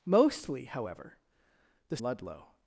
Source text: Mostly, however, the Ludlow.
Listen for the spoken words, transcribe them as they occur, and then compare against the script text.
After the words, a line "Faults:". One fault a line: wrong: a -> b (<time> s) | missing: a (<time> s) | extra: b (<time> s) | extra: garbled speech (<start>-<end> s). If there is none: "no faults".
Mostly, however, the Ludlow.
Faults:
no faults